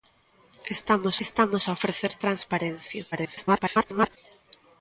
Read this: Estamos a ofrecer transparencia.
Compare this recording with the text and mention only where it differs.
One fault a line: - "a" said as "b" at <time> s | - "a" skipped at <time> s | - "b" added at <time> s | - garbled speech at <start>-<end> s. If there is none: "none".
- "estamos" added at 1.2 s
- garbled speech at 3.1-4.2 s